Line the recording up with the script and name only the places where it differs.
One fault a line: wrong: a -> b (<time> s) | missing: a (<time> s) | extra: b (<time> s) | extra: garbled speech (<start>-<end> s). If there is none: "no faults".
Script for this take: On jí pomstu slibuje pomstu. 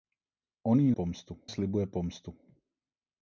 no faults